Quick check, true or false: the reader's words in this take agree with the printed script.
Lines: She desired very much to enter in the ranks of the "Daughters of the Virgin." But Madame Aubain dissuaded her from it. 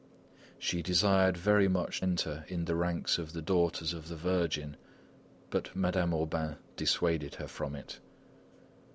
false